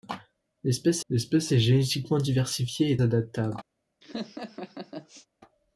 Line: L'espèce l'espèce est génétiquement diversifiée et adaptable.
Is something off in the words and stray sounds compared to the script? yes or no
yes